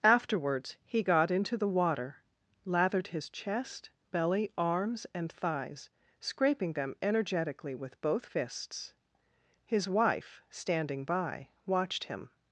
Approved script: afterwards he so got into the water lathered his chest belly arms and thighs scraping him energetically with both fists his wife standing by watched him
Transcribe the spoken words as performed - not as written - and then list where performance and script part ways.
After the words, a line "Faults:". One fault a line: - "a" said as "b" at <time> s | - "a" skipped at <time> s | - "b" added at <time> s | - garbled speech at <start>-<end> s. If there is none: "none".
afterwards he got into the water lathered his chest belly arms and thighs scraping them energetically with both fists his wife standing by watched him
Faults:
- "so" skipped at 1.0 s
- "him" said as "them" at 6.7 s